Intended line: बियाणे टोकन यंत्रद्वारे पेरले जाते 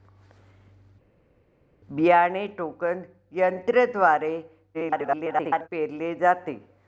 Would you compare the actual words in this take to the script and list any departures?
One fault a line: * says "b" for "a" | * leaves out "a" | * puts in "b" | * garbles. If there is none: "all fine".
* garbles